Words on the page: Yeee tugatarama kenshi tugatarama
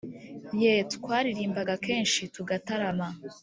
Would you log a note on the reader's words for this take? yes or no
yes